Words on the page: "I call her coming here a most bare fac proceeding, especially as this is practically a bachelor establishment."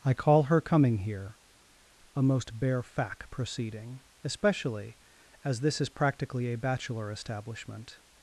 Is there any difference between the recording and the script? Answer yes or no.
no